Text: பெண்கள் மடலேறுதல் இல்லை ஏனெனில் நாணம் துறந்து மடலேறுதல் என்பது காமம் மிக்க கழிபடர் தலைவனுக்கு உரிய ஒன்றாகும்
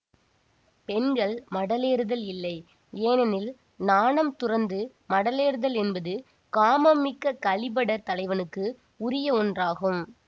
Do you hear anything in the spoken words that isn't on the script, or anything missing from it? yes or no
no